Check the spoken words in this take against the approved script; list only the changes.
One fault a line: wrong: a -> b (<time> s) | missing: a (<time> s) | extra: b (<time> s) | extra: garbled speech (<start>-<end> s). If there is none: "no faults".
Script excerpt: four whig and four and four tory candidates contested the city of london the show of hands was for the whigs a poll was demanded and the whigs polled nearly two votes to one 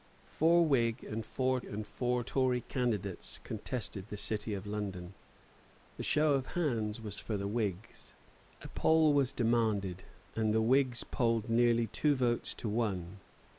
no faults